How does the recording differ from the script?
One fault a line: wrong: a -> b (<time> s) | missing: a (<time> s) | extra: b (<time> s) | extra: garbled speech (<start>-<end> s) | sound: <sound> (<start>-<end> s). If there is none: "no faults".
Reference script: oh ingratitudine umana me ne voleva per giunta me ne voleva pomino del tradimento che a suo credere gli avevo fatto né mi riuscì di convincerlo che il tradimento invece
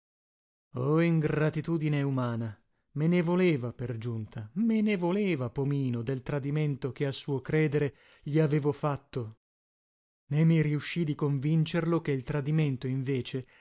no faults